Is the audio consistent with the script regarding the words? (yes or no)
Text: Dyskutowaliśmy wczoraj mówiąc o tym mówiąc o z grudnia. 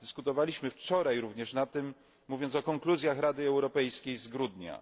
no